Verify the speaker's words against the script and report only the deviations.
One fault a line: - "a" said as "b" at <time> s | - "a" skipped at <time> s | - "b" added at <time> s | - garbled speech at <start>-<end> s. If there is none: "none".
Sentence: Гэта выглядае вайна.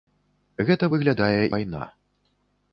none